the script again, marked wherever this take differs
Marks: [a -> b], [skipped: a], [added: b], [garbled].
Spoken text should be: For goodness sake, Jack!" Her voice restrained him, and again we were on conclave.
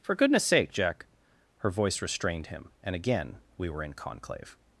For goodness sake, Jack!" Her voice restrained him, and again we were [on -> in] conclave.